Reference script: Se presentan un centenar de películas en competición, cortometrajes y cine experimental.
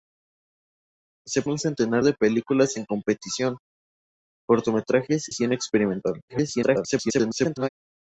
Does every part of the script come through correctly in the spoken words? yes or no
no